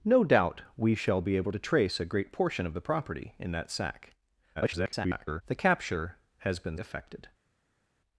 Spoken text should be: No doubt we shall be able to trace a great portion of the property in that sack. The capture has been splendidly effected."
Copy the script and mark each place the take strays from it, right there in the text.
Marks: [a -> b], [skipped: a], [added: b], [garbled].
No doubt we shall be able to trace a great portion of the property in that sack. [garbled] The capture has been [skipped: splendidly] effected."